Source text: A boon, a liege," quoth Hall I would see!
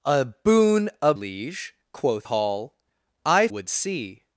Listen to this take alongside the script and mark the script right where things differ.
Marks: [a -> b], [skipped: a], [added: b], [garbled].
A boon, a liege," quoth Hall I would see!